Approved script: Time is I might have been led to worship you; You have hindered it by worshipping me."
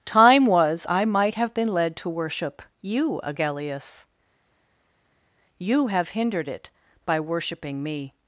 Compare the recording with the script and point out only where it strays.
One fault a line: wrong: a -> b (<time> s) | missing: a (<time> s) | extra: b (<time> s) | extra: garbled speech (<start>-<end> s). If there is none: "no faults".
wrong: is -> was (0.5 s)
extra: Agellius (3.2 s)